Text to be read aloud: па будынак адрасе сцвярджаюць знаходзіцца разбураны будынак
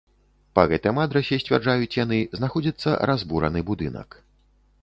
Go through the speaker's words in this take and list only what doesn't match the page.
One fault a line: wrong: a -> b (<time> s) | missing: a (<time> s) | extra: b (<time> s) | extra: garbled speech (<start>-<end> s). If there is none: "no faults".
wrong: будынак -> гэтым (0.7 s)
extra: яны (2.0 s)